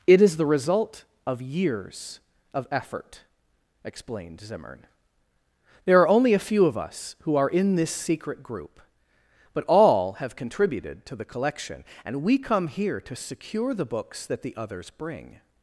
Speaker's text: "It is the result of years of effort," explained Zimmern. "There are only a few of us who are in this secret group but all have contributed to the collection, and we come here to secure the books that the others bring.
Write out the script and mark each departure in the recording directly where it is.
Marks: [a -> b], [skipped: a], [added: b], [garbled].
"It is the result of years of effort," explained Zimmern. "There are only a few of us who are in this secret group but all have contributed to the collection, and we come here to secure the books that the others bring.